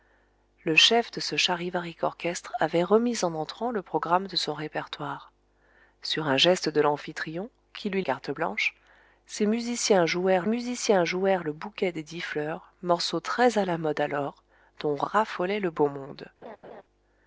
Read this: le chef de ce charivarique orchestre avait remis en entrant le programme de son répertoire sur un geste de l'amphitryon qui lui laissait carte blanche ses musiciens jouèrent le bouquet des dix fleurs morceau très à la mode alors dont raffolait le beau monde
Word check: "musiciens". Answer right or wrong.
right